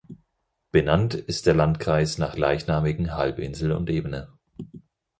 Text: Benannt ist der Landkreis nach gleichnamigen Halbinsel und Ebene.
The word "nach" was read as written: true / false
true